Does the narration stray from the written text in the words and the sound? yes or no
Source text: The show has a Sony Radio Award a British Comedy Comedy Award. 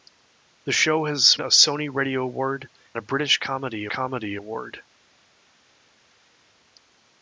no